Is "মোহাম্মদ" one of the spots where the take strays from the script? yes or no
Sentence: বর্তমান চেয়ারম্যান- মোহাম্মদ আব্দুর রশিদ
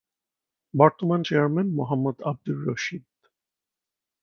no